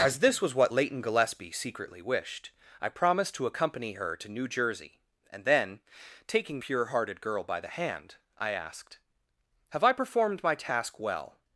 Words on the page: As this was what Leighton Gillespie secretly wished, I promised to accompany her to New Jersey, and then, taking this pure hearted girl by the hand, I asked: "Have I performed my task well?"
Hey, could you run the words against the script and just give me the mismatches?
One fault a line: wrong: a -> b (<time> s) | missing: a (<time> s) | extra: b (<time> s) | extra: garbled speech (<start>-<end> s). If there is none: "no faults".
missing: this (6.6 s)